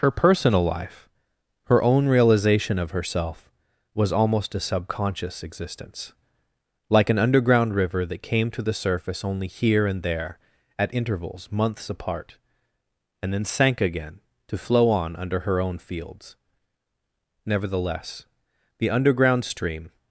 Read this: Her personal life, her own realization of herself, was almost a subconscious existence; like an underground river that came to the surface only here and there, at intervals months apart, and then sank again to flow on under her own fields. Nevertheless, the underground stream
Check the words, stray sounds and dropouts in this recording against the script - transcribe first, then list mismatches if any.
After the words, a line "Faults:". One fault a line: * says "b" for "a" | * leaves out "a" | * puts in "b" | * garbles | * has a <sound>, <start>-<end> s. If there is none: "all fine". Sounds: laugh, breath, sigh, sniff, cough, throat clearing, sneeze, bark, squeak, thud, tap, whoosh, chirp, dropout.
Her personal life, her own realization of herself, was almost a subconscious existence; like an underground river that came to the surface only here and there, at intervals months apart, and then sank again to flow on under her own fields. Nevertheless, the underground stream
Faults:
all fine